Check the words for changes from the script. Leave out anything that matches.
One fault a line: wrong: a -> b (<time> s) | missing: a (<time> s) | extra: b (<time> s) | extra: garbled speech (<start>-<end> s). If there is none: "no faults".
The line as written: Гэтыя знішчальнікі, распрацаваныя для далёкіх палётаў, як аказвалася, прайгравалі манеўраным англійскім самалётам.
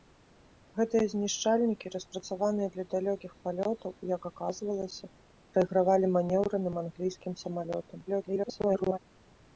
extra: garbled speech (8.1-9.0 s)